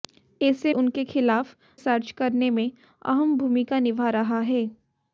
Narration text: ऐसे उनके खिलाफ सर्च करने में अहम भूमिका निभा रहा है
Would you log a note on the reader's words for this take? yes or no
no